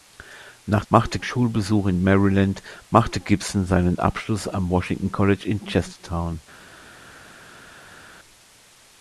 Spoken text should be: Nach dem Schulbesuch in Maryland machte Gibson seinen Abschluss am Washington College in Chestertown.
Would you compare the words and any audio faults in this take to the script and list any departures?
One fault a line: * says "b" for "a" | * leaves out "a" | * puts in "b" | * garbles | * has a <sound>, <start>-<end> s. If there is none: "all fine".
* says "machte" for "dem"